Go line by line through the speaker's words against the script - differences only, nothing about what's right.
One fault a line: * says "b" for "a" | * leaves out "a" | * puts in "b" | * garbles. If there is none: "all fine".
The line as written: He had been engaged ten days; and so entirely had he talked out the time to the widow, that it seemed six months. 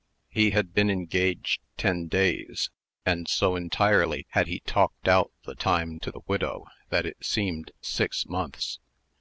all fine